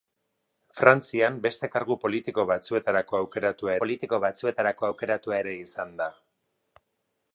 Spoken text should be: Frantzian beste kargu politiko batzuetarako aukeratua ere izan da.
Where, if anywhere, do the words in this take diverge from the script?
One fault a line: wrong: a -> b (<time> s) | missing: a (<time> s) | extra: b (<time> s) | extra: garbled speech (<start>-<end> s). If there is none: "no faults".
extra: politiko batzuetarako aukeratua (3.8 s)